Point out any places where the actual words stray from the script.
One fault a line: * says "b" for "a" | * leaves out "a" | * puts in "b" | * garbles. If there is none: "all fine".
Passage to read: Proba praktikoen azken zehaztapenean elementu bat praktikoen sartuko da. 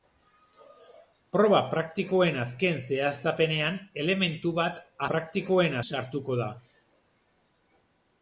all fine